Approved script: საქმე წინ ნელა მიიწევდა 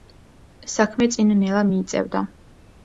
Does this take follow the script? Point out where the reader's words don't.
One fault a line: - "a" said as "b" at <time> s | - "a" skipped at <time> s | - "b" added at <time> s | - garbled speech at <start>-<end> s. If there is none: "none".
none